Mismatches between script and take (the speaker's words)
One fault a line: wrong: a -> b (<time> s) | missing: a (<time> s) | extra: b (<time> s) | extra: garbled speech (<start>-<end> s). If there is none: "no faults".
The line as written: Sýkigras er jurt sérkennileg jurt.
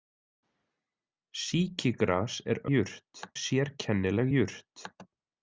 no faults